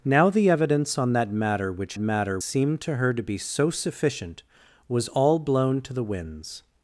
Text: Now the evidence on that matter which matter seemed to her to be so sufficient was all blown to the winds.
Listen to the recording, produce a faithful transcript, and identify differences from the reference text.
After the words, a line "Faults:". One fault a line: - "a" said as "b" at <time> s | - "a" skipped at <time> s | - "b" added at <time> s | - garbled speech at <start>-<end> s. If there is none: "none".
Now the evidence on that matter which matter seemed to her to be so sufficient was all blown to the winds.
Faults:
none